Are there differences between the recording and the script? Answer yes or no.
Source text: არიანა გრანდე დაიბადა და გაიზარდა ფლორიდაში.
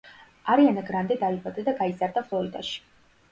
no